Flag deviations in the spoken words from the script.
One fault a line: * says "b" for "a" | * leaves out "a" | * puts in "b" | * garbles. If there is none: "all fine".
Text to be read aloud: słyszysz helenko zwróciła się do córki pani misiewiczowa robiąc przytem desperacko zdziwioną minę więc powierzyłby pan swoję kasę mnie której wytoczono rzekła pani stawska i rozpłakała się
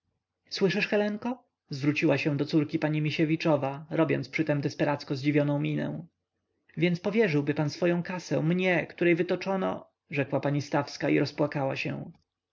all fine